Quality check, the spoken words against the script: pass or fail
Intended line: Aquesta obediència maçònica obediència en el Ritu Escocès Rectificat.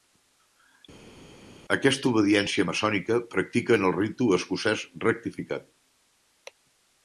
fail